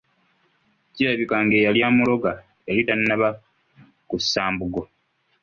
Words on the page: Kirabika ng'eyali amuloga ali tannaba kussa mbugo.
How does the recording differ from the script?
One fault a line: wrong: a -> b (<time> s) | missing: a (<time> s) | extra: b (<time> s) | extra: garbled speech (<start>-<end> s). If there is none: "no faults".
wrong: ali -> yali (2.7 s)